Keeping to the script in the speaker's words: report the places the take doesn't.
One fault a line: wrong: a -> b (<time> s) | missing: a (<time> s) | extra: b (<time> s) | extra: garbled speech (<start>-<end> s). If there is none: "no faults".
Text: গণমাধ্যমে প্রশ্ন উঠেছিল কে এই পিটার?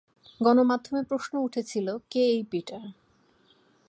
no faults